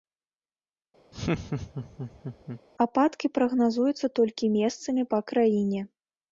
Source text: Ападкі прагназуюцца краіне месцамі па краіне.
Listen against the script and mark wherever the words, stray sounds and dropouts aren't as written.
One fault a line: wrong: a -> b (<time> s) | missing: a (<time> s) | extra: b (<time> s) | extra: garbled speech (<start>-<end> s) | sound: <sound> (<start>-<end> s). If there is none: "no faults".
sound: laugh (1.1-2.6 s)
wrong: краіне -> толькі (4.2 s)